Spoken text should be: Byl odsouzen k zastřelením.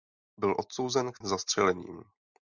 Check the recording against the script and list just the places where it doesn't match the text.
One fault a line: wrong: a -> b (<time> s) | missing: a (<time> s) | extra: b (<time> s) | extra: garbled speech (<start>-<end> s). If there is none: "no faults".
no faults